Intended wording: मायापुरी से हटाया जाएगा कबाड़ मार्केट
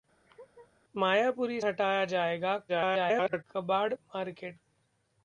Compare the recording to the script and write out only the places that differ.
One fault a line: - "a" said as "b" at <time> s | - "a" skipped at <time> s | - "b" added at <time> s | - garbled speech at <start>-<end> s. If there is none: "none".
- "से" skipped at 1.6 s
- garbled speech at 2.7-3.4 s